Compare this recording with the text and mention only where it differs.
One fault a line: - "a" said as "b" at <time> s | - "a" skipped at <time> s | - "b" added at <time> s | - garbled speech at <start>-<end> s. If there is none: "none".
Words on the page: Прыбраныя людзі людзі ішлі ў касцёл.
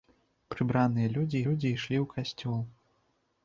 none